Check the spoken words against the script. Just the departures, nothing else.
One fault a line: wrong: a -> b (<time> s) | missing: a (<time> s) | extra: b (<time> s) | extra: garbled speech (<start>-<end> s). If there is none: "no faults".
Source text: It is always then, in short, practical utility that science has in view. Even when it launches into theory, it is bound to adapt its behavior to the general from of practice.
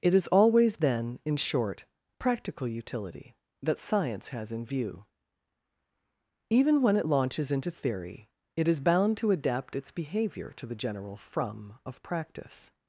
no faults